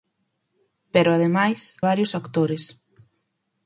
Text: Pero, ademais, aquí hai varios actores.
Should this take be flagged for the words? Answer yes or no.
yes